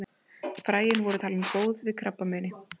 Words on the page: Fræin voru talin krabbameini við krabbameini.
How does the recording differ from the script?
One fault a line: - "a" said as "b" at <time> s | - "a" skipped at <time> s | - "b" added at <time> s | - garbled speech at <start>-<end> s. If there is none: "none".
- "krabbameini" said as "góð" at 1.5 s